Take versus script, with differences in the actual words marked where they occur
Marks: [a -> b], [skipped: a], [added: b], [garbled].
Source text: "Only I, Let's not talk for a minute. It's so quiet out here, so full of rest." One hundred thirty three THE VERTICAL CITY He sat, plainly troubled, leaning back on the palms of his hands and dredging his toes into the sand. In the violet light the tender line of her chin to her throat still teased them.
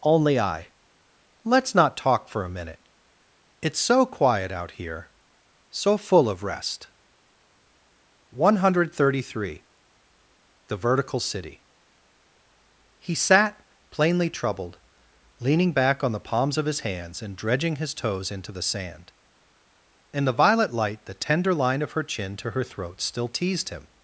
"Only I, Let's not talk for a minute. It's so quiet out here, so full of rest." One hundred thirty three THE VERTICAL CITY He sat, plainly troubled, leaning back on the palms of his hands and dredging his toes into the sand. In the violet light the tender line of her chin to her throat still teased [them. -> him]